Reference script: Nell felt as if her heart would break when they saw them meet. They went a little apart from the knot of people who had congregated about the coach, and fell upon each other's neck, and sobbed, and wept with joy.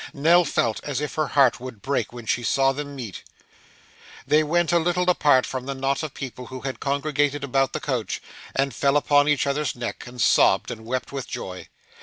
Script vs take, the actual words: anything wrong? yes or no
yes